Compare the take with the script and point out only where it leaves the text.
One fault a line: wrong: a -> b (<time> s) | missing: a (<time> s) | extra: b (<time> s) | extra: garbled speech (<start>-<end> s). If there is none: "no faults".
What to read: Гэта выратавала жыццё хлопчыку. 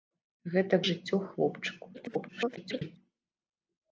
missing: выратавала (0.8 s)
extra: garbled speech (1.9-3.0 s)